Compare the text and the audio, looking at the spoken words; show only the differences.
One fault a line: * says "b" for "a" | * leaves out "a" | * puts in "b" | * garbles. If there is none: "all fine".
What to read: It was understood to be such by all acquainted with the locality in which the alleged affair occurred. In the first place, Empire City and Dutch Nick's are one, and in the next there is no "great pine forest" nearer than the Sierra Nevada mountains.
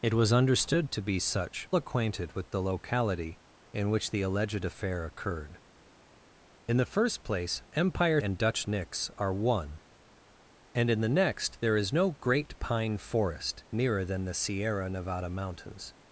* leaves out "by all"
* leaves out "City"